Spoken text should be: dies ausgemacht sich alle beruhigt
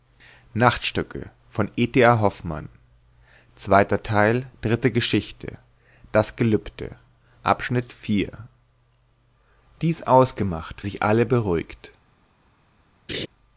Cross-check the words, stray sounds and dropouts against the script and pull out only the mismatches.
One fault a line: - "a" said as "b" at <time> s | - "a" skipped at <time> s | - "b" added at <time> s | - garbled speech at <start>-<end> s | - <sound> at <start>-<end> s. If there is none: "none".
- laugh at 13.1-13.3 s